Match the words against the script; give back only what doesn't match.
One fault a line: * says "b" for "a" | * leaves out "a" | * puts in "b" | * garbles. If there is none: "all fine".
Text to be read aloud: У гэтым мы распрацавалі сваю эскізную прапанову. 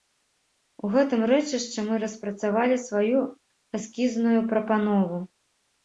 * puts in "рэчышчы"